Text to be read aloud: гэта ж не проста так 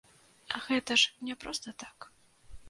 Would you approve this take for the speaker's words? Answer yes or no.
yes